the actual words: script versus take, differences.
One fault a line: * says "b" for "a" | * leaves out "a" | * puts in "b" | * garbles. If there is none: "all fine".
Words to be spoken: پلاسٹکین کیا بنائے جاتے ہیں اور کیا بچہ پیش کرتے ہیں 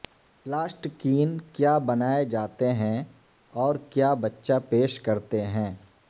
all fine